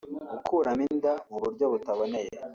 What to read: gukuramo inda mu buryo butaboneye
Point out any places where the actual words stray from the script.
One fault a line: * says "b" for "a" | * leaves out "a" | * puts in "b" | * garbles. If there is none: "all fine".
all fine